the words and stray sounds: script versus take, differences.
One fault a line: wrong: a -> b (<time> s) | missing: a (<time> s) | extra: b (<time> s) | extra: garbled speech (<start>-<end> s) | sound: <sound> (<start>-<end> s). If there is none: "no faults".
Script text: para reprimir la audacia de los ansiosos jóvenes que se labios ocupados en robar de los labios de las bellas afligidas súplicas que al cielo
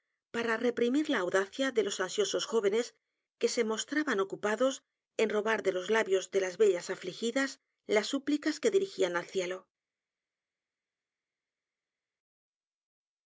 wrong: labios -> mostraban (3.6 s)
extra: las (7.8 s)
extra: dirigían (8.7 s)